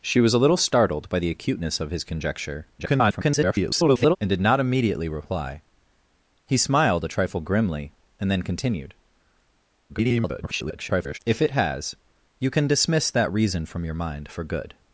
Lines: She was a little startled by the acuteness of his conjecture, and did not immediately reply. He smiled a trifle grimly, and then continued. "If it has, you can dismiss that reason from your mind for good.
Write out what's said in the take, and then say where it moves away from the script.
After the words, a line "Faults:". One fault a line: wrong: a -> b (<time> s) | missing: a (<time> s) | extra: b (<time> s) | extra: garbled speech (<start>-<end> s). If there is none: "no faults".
She was a little startled by the acuteness of his conjecture, [garbled] and did not immediately reply. He smiled a trifle grimly, and then continued. [garbled] "If it has, you can dismiss that reason from your mind for good.
Faults:
extra: garbled speech (2.8-4.2 s)
extra: garbled speech (9.9-11.2 s)